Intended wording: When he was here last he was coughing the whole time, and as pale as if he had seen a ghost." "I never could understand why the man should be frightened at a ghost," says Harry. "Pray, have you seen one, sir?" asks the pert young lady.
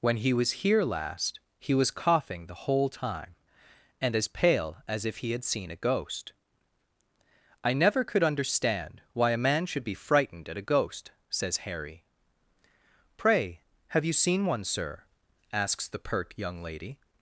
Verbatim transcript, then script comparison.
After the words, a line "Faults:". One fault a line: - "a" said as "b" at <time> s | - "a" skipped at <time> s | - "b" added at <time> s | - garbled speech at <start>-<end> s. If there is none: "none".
When he was here last he was coughing the whole time, and as pale as if he had seen a ghost." "I never could understand why a man should be frightened at a ghost," says Harry. "Pray, have you seen one, sir?" asks the pert young lady.
Faults:
- "the" said as "a" at 9.3 s